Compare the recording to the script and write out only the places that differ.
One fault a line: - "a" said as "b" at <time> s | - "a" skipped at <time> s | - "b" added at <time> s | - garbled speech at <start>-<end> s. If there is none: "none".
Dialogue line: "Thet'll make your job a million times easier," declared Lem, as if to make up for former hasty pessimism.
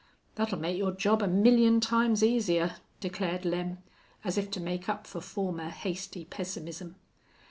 none